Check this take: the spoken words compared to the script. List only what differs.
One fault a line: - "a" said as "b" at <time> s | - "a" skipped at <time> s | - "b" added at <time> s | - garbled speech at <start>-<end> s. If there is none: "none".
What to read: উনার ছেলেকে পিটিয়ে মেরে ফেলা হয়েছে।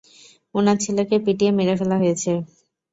none